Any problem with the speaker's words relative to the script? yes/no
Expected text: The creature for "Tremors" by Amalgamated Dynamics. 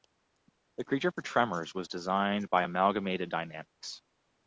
yes